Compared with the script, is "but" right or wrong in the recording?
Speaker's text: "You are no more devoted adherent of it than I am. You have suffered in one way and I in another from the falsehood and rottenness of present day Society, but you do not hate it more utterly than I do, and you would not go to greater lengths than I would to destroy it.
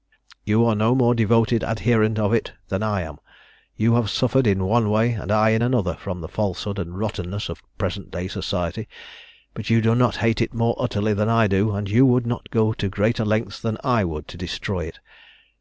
right